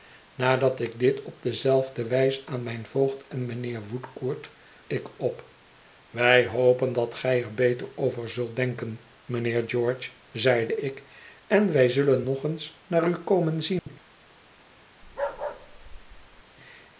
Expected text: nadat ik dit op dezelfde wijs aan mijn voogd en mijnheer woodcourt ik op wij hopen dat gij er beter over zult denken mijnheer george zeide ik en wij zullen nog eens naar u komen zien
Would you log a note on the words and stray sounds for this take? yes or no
yes